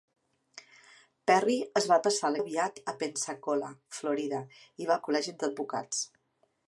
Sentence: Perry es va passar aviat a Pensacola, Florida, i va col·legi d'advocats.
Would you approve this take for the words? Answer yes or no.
yes